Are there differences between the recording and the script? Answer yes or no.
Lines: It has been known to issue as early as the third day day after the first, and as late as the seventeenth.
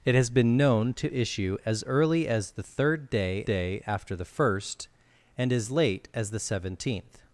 no